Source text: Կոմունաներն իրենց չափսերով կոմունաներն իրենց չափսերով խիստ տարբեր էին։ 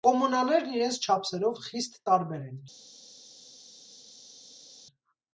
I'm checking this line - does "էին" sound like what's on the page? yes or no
no